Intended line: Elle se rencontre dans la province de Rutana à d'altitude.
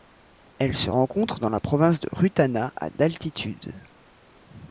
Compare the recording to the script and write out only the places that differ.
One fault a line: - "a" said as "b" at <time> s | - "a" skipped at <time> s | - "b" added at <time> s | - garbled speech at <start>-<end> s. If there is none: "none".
none